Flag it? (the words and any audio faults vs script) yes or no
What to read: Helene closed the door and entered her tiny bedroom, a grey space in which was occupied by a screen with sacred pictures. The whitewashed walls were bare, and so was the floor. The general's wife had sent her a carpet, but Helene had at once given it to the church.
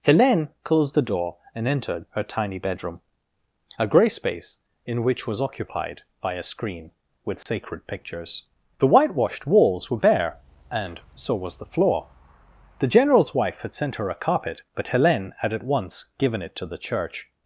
yes